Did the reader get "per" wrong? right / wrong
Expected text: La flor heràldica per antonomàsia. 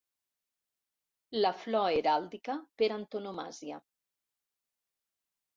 right